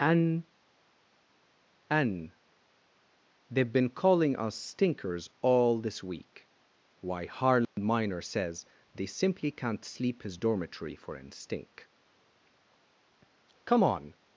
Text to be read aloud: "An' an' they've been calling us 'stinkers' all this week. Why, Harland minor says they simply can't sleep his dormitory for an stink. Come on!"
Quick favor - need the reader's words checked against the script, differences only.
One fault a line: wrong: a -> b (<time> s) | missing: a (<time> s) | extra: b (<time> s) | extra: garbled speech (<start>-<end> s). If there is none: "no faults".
no faults